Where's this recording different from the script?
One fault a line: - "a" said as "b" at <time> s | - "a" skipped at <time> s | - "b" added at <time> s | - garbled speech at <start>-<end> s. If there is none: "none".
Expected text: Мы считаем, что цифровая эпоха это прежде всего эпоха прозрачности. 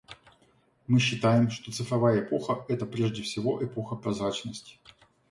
none